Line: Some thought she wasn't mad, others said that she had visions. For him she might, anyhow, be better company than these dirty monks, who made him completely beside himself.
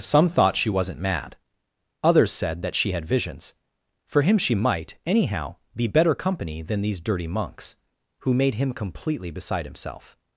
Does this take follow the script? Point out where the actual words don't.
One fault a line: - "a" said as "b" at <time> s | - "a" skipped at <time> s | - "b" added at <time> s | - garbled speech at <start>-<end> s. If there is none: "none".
none